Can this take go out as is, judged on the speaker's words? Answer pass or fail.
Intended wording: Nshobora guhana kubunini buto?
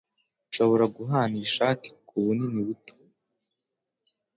fail